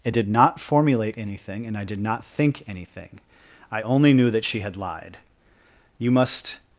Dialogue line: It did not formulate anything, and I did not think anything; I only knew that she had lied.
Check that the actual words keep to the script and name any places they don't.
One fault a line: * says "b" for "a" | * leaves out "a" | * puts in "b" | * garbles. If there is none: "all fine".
* puts in "You must"